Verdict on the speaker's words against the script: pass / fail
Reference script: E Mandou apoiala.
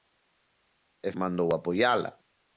pass